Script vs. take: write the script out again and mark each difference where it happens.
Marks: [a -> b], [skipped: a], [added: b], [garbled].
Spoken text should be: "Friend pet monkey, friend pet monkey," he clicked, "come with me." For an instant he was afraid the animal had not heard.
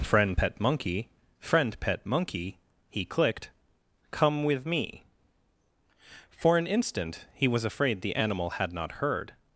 "Friend pet monkey, friend pet monkey," he clicked, "come with me." For an instant he was afraid the animal had not heard.